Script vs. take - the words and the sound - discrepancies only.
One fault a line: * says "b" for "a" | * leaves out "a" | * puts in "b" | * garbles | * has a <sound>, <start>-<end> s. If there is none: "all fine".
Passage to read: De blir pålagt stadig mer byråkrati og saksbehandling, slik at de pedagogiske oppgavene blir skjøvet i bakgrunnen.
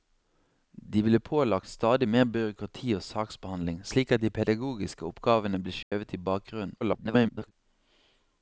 * has a dropout, 5.8-5.9 s
* garbles